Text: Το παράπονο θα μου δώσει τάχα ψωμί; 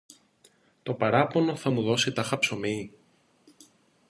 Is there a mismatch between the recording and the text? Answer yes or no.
no